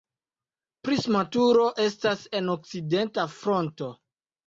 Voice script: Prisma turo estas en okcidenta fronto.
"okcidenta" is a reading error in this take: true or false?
false